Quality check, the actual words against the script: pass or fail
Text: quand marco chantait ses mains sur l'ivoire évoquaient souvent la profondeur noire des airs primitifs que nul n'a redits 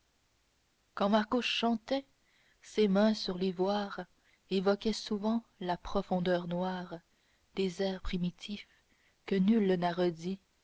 pass